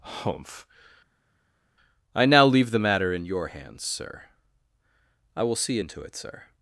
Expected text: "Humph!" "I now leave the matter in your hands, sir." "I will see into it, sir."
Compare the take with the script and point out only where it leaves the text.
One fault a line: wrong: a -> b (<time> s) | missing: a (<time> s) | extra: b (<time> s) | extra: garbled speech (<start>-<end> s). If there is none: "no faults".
no faults